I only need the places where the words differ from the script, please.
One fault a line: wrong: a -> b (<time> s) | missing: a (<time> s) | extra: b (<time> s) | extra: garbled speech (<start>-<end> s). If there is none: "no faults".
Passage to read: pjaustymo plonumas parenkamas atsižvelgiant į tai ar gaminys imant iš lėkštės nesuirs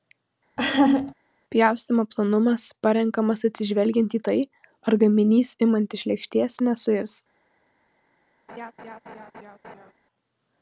no faults